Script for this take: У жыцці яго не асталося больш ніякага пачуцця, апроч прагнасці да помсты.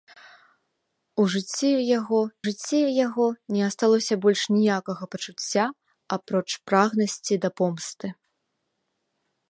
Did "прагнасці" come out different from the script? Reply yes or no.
no